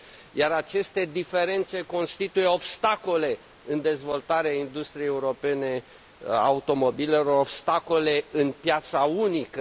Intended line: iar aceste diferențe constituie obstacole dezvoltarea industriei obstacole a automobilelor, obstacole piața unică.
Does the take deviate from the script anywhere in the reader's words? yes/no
yes